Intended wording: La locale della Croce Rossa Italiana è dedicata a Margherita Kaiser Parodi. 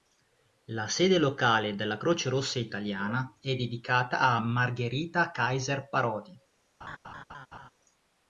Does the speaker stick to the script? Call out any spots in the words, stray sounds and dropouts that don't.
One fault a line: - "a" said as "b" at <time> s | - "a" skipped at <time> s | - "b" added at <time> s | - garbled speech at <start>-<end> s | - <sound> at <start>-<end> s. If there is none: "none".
- "sede" added at 0.9 s
- laugh at 6.8-7.7 s